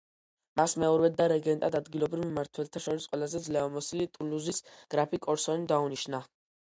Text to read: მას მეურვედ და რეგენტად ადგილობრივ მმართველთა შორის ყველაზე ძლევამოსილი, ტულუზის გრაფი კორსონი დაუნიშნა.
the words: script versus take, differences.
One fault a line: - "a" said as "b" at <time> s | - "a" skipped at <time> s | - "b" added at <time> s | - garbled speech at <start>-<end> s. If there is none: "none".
none